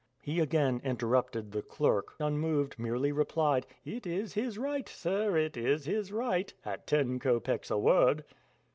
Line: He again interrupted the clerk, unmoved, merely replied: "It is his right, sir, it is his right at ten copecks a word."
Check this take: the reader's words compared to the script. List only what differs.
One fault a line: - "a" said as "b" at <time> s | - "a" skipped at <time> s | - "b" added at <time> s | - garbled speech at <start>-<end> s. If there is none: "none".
none